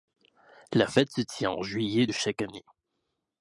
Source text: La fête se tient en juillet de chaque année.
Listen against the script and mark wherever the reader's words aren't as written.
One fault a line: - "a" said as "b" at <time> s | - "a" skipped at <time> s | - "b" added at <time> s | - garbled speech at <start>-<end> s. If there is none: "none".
none